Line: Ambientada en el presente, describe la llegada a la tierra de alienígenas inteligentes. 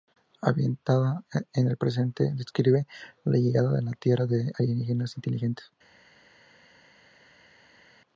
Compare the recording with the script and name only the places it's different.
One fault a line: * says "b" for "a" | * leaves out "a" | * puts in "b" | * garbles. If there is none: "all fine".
all fine